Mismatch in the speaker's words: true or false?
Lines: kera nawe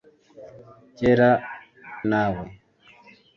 false